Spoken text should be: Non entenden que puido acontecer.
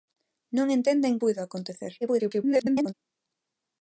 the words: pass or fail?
fail